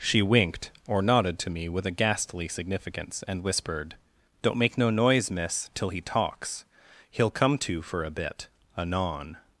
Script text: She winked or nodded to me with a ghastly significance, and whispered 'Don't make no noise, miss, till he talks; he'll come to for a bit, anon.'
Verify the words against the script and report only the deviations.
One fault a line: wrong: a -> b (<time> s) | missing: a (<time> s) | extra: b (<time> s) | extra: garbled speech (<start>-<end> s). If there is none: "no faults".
no faults